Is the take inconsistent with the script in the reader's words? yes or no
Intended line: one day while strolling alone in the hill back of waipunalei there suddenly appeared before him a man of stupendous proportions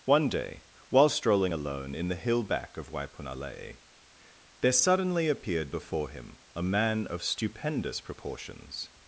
no